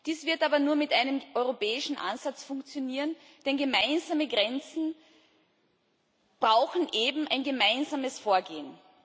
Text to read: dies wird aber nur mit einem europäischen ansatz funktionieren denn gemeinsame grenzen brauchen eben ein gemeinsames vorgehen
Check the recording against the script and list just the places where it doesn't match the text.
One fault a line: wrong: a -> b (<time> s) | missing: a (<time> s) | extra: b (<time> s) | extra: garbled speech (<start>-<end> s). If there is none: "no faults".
no faults